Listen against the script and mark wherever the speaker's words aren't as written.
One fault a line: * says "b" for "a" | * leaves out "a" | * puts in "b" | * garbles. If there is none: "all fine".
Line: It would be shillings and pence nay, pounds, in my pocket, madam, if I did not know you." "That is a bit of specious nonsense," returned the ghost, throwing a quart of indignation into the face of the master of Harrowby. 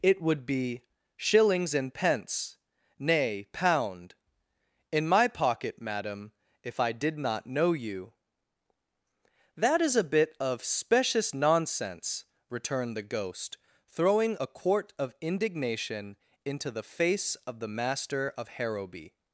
* says "pound" for "pounds"